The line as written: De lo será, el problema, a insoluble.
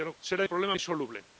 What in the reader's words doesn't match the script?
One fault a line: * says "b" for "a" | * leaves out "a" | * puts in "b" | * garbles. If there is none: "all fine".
all fine